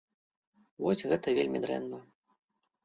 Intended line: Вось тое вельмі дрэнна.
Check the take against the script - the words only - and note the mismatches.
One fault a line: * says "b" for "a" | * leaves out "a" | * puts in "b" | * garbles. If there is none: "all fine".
* says "гэта" for "тое"